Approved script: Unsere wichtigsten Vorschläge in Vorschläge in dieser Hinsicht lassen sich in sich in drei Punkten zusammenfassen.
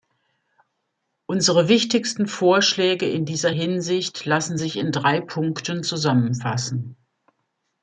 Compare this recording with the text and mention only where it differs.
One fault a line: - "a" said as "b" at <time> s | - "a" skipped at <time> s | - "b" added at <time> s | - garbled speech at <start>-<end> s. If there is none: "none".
- "Vorschläge in" skipped at 3.2 s
- "sich in" skipped at 4.9 s